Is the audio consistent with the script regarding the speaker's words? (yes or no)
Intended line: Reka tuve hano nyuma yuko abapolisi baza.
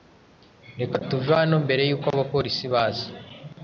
no